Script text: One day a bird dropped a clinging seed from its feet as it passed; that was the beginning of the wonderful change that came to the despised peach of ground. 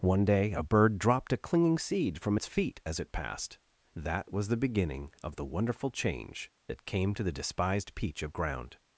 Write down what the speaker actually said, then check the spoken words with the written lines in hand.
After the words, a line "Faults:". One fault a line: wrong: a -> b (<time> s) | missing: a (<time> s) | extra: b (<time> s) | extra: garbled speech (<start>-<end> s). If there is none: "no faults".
One day a bird dropped a clinging seed from its feet as it passed; that was the beginning of the wonderful change that came to the despised peach of ground.
Faults:
no faults